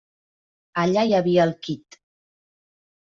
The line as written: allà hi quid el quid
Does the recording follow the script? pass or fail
fail